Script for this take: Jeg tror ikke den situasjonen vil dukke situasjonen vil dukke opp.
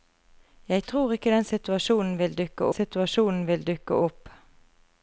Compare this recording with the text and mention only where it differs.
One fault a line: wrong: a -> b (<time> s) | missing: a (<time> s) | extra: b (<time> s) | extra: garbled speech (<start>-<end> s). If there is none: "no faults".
no faults